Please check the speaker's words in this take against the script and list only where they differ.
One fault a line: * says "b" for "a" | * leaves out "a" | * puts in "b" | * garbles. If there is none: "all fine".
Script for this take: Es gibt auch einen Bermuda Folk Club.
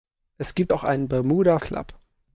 * leaves out "Folk"